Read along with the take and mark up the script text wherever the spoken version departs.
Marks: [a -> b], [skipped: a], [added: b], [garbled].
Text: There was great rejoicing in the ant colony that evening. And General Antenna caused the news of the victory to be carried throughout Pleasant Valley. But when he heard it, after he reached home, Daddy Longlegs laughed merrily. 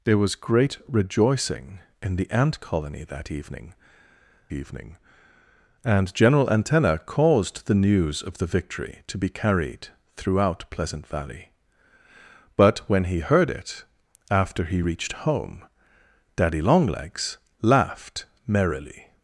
There was great rejoicing in the ant colony that evening. [added: evening] And General Antenna caused the news of the victory to be carried throughout Pleasant Valley. But when he heard it, after he reached home, Daddy Longlegs laughed merrily.